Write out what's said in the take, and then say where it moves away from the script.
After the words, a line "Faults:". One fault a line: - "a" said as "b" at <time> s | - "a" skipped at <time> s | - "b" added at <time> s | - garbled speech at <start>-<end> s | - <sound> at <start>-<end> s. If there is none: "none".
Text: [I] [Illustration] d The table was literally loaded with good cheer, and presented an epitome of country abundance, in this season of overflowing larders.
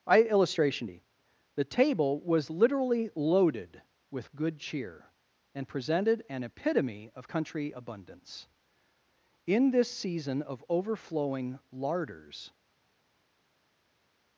[I] [Illustration] d The table was literally loaded with good cheer, and presented an epitome of country abundance, in this season of overflowing larders.
Faults:
none